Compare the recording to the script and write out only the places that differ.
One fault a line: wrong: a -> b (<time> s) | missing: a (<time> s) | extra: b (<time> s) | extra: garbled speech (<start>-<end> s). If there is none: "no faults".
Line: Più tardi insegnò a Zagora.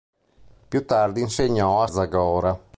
no faults